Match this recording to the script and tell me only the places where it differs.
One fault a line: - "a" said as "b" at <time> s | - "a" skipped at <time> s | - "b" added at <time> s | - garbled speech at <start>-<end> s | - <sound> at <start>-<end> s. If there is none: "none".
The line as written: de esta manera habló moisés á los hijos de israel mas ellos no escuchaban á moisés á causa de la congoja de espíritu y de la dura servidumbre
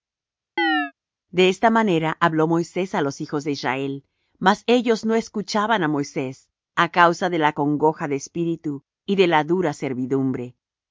- chirp at 0.6-0.9 s